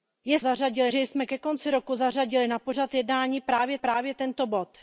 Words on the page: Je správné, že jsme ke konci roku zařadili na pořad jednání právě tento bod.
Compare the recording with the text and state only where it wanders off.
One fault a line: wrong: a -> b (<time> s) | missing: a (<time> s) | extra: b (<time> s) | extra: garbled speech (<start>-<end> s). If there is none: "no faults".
wrong: správné -> zařadili (0.4 s)
extra: právě (3.8 s)